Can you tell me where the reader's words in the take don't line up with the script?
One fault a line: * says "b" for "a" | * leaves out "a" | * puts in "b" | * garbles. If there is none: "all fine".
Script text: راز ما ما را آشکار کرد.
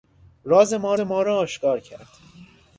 all fine